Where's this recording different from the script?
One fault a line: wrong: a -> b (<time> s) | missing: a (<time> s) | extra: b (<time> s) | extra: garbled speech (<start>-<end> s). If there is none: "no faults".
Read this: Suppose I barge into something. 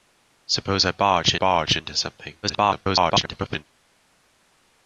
extra: barge (1.3 s)
extra: garbled speech (2.4-3.6 s)